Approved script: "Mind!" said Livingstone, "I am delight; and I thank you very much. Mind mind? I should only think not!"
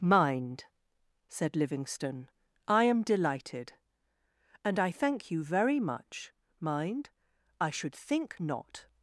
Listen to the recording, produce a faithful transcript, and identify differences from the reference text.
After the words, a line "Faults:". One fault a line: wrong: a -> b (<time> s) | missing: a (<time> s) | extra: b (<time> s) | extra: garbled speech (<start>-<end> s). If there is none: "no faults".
"Mind!" said Livingstone, "I am delighted; and I thank you very much. Mind? I should think not!"
Faults:
wrong: delight -> delighted (3.0 s)
missing: mind (7.1 s)
missing: only (8.0 s)